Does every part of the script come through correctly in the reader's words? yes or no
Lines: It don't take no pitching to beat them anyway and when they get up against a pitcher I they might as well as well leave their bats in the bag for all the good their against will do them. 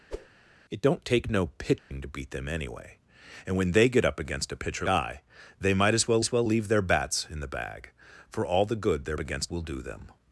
yes